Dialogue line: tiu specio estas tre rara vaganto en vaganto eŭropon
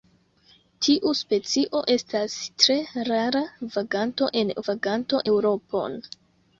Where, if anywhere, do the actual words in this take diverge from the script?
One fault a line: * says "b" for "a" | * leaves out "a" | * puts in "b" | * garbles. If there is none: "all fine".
all fine